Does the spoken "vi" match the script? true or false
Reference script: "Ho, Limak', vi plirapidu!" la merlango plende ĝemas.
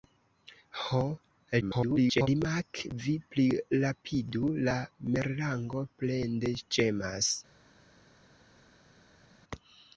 true